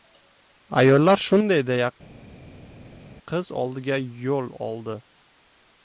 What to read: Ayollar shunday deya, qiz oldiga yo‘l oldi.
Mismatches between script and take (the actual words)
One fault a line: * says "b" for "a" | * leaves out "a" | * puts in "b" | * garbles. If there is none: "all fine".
all fine